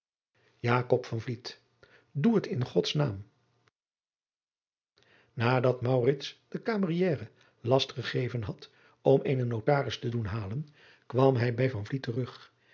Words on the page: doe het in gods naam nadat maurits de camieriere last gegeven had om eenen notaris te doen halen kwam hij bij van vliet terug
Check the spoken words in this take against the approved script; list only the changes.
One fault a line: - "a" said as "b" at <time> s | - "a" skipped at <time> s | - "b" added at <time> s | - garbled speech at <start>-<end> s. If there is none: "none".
none